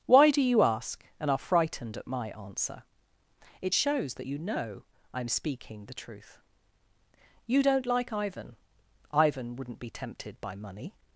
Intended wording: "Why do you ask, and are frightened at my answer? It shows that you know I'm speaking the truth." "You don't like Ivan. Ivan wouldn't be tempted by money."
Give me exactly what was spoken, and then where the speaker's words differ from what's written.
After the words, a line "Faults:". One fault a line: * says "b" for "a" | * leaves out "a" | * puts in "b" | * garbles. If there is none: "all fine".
"Why do you ask, and are frightened at my answer? It shows that you know I'm speaking the truth." "You don't like Ivan. Ivan wouldn't be tempted by money."
Faults:
all fine